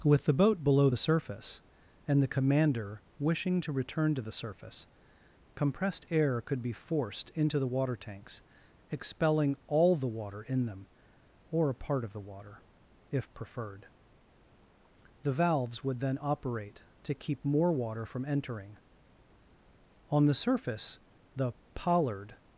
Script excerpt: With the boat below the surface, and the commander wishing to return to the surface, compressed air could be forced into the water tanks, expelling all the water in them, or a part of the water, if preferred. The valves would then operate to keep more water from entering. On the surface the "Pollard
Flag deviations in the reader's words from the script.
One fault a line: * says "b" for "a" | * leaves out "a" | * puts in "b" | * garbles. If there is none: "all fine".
all fine